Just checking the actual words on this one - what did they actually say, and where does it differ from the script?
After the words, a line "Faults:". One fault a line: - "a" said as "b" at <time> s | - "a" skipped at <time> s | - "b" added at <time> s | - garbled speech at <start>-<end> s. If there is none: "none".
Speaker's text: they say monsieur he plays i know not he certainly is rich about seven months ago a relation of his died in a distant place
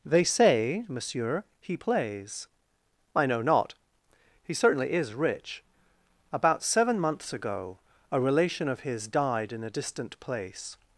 they say monsieur he plays i know not he certainly is rich about seven months ago a relation of his died in a distant place
Faults:
none